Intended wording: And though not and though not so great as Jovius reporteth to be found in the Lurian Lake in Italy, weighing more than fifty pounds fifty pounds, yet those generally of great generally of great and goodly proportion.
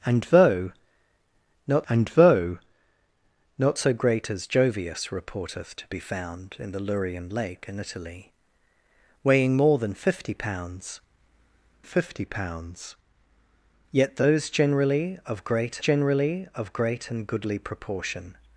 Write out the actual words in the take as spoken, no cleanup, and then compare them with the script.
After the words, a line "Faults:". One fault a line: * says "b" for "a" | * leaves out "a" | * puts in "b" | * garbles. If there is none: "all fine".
And though not and though not so great as Jovius reporteth to be found in the Lurian Lake in Italy, weighing more than fifty pounds fifty pounds, yet those generally of great generally of great and goodly proportion.
Faults:
all fine